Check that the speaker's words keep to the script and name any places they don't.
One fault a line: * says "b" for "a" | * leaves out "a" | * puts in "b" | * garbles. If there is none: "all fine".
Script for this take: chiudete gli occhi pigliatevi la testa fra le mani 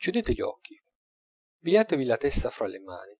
all fine